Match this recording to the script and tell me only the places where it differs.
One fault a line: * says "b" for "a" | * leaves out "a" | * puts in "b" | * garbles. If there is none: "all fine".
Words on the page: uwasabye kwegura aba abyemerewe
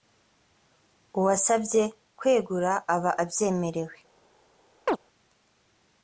all fine